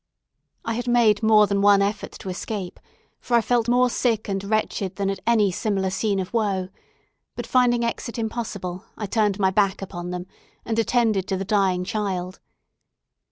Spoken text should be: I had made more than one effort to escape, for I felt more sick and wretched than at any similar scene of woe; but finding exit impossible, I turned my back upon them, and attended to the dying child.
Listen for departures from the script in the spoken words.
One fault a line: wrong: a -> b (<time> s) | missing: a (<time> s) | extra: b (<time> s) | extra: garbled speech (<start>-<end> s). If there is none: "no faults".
no faults